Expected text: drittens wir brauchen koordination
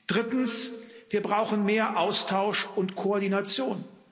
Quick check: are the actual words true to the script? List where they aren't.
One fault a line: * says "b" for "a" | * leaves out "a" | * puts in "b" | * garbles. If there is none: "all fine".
* puts in "mehr austausch und"